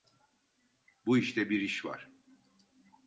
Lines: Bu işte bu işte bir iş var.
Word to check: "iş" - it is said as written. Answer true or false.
true